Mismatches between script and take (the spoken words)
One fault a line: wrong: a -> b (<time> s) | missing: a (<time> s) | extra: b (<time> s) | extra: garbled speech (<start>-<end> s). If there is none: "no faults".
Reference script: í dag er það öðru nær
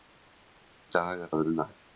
missing: það (1.3 s)